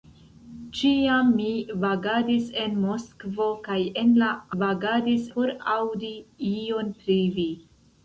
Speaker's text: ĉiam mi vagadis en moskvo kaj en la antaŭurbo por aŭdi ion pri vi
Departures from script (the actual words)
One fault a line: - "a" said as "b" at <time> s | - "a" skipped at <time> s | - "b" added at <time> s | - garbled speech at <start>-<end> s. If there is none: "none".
- "antaŭurbo" said as "vagadis" at 4.6 s